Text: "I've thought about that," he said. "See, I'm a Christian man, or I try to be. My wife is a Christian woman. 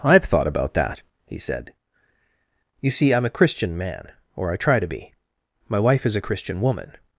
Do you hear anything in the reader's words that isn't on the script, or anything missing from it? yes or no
yes